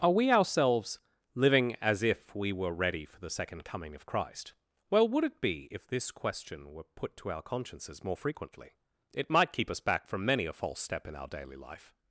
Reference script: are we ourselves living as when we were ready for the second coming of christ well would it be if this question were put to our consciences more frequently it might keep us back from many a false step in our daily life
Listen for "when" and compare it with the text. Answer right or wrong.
wrong